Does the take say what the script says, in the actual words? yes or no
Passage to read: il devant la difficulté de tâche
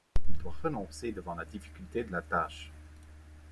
no